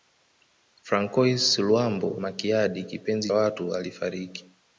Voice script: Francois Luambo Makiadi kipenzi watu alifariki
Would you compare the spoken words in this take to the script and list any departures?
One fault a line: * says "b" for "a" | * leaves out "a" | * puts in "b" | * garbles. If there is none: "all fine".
all fine